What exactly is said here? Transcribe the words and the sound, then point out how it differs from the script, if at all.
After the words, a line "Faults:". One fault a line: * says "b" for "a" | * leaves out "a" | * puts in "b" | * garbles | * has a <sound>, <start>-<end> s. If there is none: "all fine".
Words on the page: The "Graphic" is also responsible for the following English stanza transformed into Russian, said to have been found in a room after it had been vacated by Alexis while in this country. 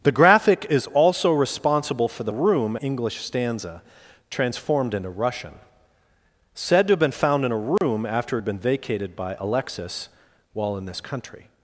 The "Graphic" is also responsible for the room English stanza transformed into Russian, said to have been found in a room after it had been vacated by Alexis while in this country.
Faults:
* says "room" for "following"
* has a dropout, 7.8-7.8 s